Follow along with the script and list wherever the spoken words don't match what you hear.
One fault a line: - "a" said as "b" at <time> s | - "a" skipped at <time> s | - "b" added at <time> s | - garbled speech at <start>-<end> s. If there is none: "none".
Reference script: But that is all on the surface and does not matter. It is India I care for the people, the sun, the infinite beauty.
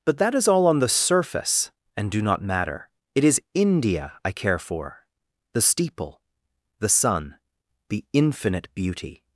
- "does" said as "do" at 2.1 s
- "people" said as "steeple" at 5.6 s